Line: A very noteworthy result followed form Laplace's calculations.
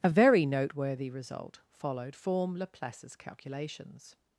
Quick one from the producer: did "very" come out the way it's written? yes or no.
yes